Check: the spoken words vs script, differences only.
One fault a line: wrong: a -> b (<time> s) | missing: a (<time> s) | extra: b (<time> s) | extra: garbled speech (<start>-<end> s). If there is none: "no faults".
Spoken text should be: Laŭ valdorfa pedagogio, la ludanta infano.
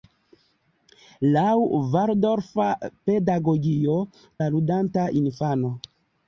no faults